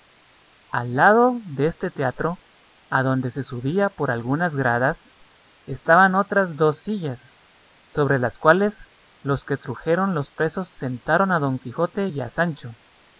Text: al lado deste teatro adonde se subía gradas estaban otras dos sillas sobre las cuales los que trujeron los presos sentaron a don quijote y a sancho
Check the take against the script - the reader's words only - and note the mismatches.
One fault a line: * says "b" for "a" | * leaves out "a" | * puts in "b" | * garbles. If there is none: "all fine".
* puts in "por algunas"